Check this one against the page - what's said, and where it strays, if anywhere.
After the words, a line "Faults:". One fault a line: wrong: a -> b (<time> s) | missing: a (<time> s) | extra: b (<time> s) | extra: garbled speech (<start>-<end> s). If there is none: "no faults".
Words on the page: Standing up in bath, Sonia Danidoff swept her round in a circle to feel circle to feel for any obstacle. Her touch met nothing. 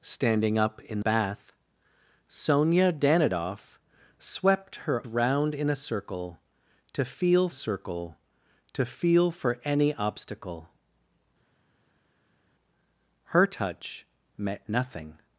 Standing up in bath, Sonia Danidoff swept her round in a circle to feel circle to feel for any obstacle. Her touch met nothing.
Faults:
no faults